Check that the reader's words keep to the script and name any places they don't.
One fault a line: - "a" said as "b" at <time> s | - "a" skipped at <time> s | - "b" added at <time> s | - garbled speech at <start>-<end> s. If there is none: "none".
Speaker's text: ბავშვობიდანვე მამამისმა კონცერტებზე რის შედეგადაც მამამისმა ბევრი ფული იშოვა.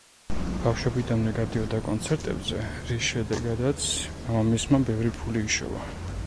- "მამამისმა" said as "გადიოდა" at 1.4 s